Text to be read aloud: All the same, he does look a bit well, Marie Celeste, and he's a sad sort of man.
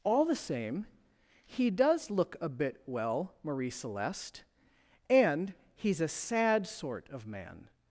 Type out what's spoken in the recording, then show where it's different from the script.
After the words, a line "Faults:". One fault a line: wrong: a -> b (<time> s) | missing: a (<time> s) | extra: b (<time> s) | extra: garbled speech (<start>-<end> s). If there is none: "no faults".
All the same, he does look a bit well, Marie Celeste, and he's a sad sort of man.
Faults:
no faults